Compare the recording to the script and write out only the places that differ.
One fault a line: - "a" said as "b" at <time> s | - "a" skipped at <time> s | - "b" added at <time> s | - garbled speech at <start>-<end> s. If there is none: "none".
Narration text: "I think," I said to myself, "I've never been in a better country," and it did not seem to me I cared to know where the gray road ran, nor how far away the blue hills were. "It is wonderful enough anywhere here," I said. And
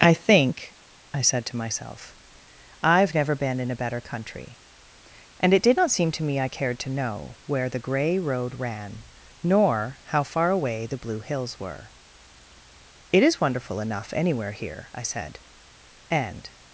none